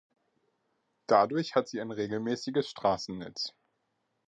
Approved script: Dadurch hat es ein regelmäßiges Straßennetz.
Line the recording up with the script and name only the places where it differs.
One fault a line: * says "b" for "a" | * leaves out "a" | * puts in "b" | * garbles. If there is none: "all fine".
* says "sie" for "es"